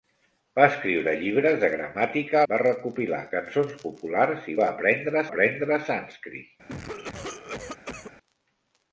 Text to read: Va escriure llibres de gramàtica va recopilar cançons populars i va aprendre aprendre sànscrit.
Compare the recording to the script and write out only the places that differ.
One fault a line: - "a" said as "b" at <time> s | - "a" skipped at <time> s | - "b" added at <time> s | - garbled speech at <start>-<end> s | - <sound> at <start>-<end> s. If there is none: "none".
- cough at 6.7-8.1 s